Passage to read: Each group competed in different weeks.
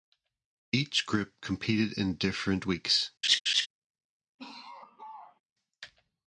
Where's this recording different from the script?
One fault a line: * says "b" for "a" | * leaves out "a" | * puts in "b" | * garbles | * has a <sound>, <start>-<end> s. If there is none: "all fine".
* has a laugh, 3.2-3.7 s
* has a laugh, 4.4-5.4 s